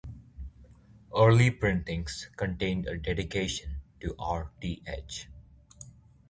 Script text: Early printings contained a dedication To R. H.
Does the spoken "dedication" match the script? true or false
true